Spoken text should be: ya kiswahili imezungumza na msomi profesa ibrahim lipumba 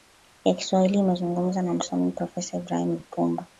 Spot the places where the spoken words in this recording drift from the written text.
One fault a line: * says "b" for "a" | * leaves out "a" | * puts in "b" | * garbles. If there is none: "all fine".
all fine